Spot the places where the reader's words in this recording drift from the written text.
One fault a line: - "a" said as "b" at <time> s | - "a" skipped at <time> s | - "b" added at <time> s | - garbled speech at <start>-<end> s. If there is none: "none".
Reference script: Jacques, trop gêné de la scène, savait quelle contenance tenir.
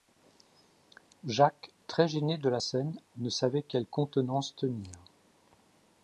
- "trop" said as "très" at 1.9 s
- "ne" added at 3.2 s